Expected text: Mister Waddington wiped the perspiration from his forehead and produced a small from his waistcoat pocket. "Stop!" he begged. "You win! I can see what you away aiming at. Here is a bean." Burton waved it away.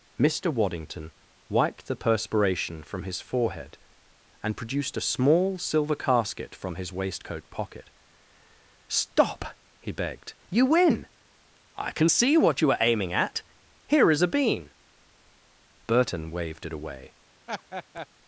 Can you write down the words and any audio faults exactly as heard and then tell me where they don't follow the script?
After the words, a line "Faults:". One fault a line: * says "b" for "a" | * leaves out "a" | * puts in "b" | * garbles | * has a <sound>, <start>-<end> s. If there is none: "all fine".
Mister Waddington wiped the perspiration from his forehead and produced a small silver casket from his waistcoat pocket. "Stop!" he begged. "You win! I can see what you are aiming at. Here is a bean." Burton waved it away.
Faults:
* puts in "silver casket"
* says "are" for "away"
* has a laugh, 17.5-18.1 s